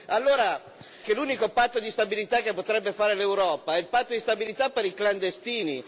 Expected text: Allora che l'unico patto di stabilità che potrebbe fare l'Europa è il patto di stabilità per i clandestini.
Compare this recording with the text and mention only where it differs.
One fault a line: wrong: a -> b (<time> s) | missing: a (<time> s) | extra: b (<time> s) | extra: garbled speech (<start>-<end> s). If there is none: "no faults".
no faults